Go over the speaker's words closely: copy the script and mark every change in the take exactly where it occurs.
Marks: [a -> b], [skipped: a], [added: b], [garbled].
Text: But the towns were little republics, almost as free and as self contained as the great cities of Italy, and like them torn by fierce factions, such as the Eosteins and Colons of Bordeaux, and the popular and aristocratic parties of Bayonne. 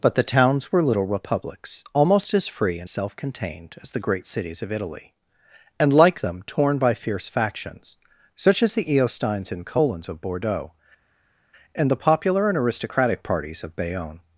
But the towns were little republics, almost as free and [skipped: as] self contained as the great cities of Italy, and like them torn by fierce factions, such as the Eosteins and Colons of Bordeaux, and the popular and aristocratic parties of Bayonne.